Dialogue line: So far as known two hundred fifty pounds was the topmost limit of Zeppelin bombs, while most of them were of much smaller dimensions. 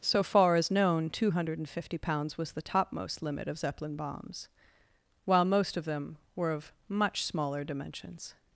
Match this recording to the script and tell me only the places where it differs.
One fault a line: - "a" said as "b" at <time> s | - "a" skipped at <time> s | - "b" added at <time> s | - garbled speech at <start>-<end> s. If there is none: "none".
none